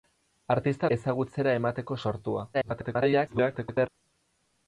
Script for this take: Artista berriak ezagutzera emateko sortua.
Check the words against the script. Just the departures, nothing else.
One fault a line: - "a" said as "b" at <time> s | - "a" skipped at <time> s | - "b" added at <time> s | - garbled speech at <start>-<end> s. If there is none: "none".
- "berriak" skipped at 0.9 s
- garbled speech at 2.5-3.9 s